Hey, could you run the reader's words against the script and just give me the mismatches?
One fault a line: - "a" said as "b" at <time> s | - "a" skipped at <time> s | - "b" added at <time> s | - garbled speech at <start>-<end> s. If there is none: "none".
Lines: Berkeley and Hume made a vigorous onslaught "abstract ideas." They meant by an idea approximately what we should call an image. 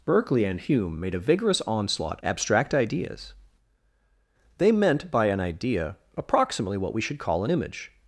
none